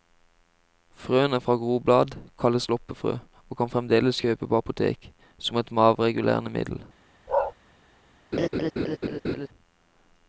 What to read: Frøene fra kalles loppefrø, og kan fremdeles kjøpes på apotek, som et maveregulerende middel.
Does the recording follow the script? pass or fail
fail